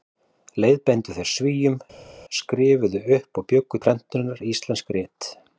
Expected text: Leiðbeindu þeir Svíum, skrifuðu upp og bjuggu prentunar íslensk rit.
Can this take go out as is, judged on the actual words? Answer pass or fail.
pass